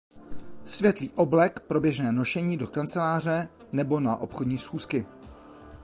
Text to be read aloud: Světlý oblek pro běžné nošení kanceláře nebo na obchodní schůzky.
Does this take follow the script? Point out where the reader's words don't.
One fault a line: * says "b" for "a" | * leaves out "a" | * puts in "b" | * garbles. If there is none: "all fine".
* puts in "do"